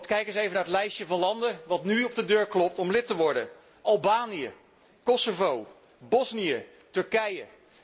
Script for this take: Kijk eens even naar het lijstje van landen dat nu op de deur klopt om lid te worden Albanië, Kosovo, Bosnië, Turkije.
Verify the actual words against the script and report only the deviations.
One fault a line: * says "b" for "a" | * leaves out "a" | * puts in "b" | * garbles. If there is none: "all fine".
all fine